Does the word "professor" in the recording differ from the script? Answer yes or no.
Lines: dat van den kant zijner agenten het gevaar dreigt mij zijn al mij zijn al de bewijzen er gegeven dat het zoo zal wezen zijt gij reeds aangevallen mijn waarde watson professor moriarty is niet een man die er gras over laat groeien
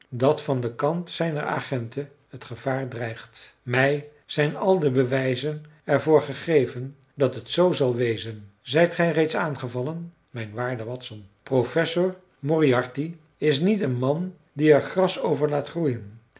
no